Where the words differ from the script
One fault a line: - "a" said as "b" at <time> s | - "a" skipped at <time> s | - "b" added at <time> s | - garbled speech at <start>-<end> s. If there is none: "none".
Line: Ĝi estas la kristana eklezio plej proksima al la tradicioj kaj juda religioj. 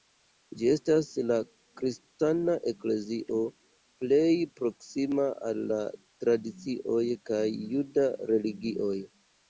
none